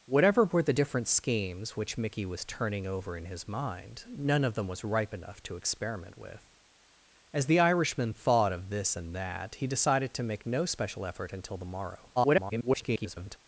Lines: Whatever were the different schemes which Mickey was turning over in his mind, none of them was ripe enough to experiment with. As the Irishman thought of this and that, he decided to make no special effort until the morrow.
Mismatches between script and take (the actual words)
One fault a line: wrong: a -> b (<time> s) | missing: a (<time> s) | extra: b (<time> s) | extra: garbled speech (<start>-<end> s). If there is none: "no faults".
extra: garbled speech (12.2-13.4 s)